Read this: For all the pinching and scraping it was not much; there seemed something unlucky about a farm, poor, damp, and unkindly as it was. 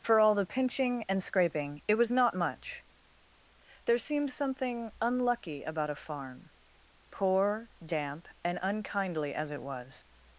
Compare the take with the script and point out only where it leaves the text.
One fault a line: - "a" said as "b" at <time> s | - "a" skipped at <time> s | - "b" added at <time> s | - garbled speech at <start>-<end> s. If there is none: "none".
none